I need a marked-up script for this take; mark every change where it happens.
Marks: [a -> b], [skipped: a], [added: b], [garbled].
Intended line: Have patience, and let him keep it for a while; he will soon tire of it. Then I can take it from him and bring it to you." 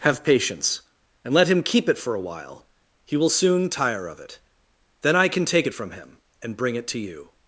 Have patience, and let him keep it for a while; he will soon tire of it. Then I can take it from him and bring it to you."